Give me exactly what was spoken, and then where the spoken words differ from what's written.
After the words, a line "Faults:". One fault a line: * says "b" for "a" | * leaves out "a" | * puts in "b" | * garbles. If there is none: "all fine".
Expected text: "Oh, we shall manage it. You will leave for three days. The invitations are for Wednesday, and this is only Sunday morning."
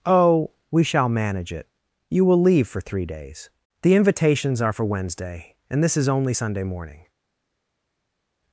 "Oh, we shall manage it. You will leave for three days. The invitations are for Wednesday, and this is only Sunday morning."
Faults:
all fine